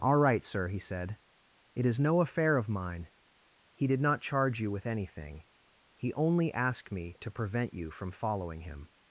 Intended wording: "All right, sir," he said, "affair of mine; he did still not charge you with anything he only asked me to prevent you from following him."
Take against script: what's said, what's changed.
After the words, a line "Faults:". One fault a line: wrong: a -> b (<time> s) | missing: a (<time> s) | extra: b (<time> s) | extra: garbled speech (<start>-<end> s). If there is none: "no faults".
"All right, sir," he said, "it is no affair of mine; he did not charge you with anything he only asked me to prevent you from following him."
Faults:
extra: it is no (1.8 s)
missing: still (4.0 s)